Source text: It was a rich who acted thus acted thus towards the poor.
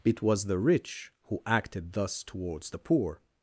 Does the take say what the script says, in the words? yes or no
no